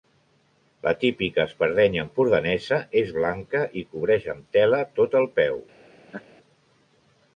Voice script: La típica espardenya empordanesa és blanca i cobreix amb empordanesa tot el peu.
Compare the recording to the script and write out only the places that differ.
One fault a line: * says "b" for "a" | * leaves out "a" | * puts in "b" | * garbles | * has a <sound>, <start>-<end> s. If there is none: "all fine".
* says "tela" for "empordanesa"
* has a laugh, 6.1-6.2 s